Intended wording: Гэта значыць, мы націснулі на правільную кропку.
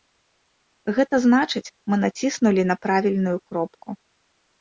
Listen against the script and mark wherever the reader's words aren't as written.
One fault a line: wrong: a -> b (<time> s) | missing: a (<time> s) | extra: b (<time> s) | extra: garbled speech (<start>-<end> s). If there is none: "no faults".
no faults